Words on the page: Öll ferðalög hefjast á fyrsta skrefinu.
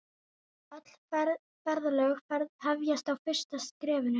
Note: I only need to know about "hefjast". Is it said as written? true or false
true